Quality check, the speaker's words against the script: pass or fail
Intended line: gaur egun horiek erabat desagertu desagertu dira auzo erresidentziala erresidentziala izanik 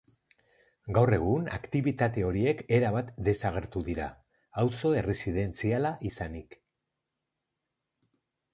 fail